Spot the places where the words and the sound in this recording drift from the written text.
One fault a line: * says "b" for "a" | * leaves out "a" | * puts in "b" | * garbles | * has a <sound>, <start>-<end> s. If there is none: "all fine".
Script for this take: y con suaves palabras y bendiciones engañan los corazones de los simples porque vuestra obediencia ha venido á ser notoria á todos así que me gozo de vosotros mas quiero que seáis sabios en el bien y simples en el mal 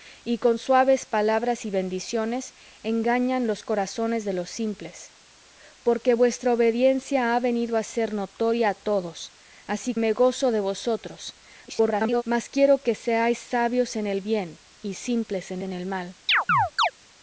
* leaves out "que"
* garbles
* puts in "en"
* has a chirp, 16.3-16.9 s